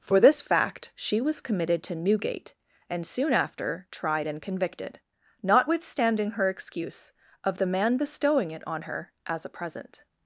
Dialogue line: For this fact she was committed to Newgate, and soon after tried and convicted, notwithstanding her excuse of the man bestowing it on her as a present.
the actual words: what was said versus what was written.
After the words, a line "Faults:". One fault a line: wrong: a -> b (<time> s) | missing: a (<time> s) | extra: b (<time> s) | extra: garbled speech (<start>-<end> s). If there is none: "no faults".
For this fact she was committed to Newgate, and soon after tried and convicted, notwithstanding her excuse of the man bestowing it on her as a present.
Faults:
no faults